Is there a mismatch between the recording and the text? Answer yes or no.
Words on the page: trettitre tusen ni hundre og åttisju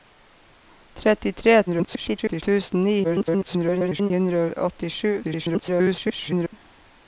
yes